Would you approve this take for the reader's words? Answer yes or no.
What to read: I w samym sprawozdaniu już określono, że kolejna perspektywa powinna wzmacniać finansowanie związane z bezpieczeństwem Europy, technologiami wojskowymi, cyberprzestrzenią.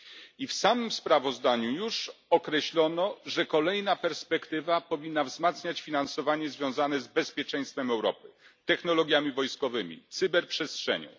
yes